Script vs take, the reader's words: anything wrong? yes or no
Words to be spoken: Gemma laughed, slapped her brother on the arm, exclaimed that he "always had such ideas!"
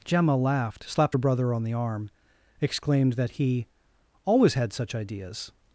no